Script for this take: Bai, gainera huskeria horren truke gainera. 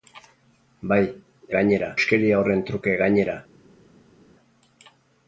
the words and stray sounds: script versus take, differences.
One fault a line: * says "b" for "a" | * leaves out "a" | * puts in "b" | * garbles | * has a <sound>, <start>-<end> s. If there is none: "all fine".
all fine